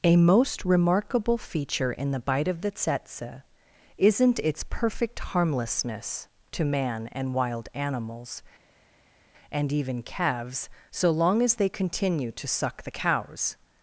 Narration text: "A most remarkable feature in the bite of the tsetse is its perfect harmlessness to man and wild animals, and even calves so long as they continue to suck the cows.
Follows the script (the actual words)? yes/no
no